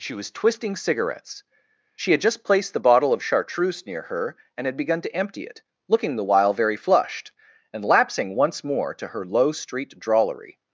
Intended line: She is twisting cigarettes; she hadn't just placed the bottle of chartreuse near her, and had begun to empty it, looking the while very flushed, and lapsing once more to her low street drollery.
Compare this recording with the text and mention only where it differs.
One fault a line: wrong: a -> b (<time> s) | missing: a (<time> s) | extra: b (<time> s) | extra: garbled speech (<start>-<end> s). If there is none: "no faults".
wrong: is -> was (0.1 s)
wrong: hadn't -> had (2.1 s)